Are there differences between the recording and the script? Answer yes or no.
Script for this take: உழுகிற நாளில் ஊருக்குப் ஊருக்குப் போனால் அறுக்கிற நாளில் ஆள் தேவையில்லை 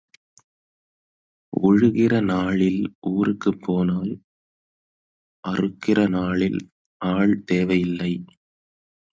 yes